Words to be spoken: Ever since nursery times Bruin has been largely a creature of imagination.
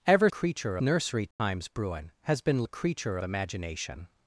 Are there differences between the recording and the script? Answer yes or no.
yes